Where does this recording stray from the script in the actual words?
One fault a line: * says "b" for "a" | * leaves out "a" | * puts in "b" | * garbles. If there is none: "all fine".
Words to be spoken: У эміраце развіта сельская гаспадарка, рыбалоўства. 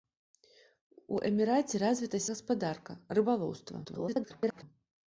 * leaves out "сельская"
* garbles